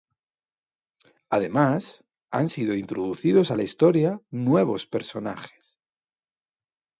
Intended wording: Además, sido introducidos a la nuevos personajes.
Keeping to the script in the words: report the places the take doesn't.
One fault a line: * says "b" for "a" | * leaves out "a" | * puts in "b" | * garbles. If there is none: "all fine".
* puts in "han"
* puts in "historia"